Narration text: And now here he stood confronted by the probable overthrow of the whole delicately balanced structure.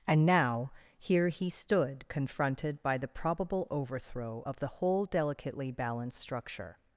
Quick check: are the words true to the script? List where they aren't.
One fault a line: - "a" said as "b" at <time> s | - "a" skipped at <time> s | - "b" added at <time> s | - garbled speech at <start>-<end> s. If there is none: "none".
none